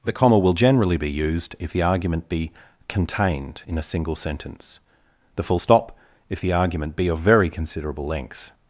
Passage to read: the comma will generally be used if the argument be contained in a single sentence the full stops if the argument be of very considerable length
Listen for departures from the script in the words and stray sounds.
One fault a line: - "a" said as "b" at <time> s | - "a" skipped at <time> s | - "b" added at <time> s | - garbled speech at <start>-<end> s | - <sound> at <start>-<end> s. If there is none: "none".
- "stops" said as "stop" at 5.6 s